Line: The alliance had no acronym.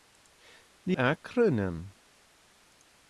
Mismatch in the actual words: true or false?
true